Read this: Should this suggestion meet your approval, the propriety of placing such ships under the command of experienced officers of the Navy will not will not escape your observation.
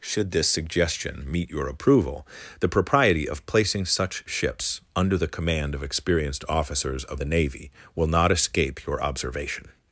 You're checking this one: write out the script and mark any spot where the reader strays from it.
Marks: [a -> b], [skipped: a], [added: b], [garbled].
Should this suggestion meet your approval, the propriety of placing such ships under the command of experienced officers of the Navy will not [skipped: will not] escape your observation.